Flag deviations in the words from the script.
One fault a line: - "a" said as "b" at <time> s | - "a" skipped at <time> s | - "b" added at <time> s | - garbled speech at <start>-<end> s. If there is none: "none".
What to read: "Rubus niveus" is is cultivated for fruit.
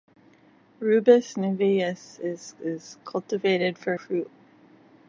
none